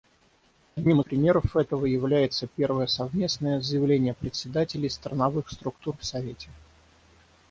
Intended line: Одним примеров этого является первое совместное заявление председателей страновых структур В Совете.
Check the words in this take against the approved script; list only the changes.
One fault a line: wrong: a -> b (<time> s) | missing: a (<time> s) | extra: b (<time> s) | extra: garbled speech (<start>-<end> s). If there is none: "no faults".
no faults